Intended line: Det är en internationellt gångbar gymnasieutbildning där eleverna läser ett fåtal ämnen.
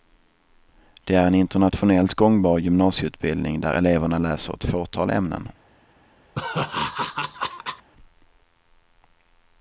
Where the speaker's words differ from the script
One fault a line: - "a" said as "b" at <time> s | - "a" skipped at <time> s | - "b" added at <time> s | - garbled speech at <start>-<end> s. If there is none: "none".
none